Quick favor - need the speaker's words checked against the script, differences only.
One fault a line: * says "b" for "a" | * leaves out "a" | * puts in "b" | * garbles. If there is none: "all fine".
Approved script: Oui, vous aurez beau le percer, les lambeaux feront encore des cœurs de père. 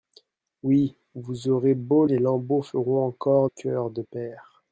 * leaves out "le percer"
* leaves out "des"